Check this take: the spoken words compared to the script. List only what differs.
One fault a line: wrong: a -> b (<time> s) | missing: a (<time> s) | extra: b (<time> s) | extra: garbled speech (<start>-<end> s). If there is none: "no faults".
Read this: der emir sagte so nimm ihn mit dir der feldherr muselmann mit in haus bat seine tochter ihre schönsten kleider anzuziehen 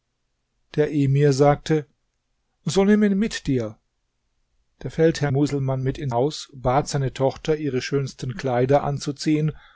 no faults